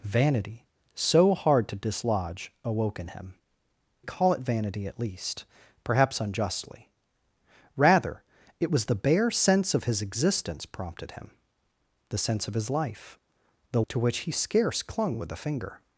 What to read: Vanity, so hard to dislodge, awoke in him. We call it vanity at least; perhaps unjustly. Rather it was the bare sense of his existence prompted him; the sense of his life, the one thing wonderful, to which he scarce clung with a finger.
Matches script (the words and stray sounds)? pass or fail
fail